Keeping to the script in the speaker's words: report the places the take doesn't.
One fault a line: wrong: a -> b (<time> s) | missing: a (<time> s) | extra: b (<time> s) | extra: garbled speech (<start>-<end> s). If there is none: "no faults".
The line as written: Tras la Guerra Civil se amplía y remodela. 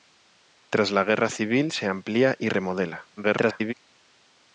extra: garbled speech (3.2-3.7 s)